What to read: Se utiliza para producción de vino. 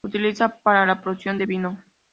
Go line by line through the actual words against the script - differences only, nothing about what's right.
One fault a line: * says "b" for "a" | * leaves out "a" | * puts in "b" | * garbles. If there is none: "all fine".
* puts in "la"